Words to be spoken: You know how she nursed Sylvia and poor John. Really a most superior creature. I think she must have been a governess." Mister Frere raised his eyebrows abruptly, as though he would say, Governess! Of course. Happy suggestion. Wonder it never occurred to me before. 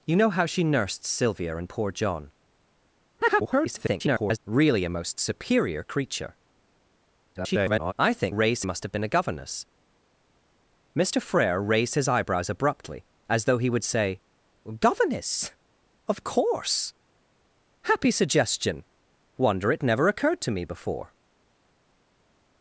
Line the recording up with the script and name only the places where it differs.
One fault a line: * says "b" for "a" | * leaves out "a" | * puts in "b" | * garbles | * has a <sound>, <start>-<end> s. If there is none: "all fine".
* garbles
* garbles
* says "raised" for "she"